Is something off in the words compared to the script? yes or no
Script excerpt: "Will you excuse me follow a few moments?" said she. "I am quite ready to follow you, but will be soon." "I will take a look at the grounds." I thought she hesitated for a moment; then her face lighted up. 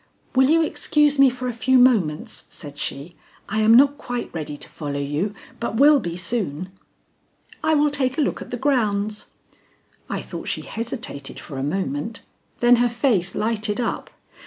yes